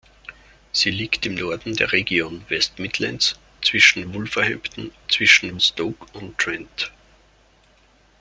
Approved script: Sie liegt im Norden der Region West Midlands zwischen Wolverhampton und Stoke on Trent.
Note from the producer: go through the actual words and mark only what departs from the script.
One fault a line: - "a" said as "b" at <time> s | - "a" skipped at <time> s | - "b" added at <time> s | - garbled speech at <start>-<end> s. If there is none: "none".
- "und" said as "zwischen" at 5.1 s